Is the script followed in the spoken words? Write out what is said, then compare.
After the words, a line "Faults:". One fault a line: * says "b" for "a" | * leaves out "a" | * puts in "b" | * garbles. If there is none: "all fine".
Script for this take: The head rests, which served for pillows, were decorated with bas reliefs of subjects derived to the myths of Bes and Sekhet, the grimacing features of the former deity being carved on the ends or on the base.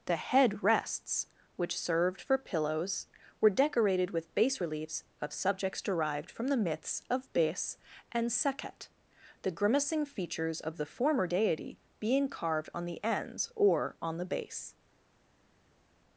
The head rests, which served for pillows, were decorated with bas reliefs of subjects derived from the myths of Bes and Sekhet, the grimacing features of the former deity being carved on the ends or on the base.
Faults:
* says "from" for "to"